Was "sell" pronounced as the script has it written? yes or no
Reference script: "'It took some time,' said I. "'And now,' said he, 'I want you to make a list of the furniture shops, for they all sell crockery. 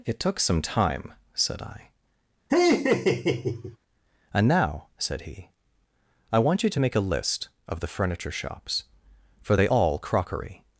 no